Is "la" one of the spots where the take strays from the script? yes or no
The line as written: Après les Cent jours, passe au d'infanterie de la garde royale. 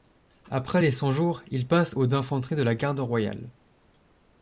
no